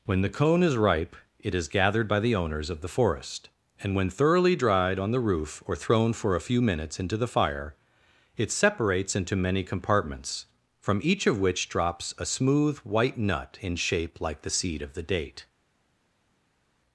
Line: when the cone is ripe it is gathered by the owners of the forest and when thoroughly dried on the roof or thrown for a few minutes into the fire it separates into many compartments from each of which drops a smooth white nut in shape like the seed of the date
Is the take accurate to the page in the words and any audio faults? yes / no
yes